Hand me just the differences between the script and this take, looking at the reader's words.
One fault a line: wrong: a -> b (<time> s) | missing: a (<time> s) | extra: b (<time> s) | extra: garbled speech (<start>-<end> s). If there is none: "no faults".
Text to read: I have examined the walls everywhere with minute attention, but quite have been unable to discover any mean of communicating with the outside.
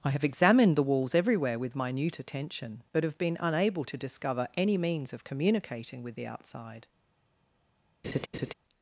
missing: quite (3.0 s)
wrong: mean -> means (4.8 s)